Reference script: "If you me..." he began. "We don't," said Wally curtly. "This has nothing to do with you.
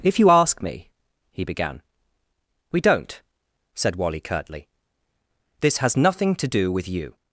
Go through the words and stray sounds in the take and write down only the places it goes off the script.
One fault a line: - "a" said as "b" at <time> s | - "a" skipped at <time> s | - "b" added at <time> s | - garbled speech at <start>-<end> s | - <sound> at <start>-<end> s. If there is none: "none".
- "ask" added at 0.3 s